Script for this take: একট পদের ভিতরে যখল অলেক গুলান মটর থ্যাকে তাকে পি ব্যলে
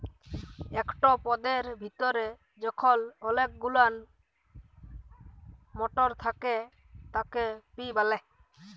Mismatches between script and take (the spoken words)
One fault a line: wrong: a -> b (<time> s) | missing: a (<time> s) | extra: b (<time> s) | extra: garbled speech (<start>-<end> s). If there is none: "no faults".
no faults